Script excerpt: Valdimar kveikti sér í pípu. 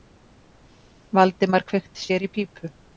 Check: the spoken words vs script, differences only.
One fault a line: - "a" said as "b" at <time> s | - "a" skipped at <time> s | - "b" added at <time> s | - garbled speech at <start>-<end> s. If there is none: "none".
none